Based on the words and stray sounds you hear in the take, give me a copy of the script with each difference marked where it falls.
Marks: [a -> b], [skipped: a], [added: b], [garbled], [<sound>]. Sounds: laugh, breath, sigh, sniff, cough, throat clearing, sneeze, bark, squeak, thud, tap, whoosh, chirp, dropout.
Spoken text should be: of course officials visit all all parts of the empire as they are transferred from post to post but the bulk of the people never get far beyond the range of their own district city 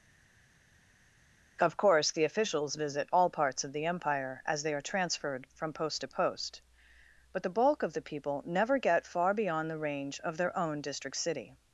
of course [added: the] officials visit all [skipped: all] parts of the empire as they are transferred from post to post but the bulk of the people never get far beyond the range of their own district city